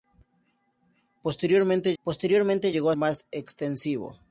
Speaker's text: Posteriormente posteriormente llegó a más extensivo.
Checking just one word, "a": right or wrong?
right